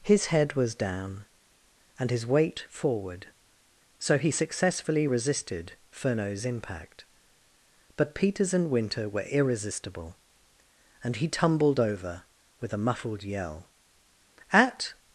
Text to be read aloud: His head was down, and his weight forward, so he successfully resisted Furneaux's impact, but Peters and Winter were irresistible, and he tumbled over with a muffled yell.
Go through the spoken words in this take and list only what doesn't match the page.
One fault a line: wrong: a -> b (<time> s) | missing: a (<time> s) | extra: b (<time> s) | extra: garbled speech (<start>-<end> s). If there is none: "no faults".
extra: At (14.5 s)